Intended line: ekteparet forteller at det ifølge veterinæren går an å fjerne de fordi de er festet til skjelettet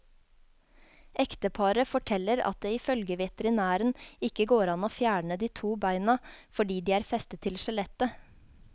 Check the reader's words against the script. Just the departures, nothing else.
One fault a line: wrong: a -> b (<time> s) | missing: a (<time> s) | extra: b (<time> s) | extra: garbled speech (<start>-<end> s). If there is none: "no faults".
extra: ikke (4.3 s)
extra: to beina (5.6 s)